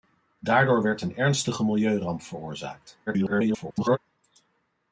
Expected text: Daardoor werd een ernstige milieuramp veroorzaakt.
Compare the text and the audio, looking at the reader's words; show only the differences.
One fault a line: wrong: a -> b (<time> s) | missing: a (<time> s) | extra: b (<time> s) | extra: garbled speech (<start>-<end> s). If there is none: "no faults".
extra: garbled speech (3.1-4.0 s)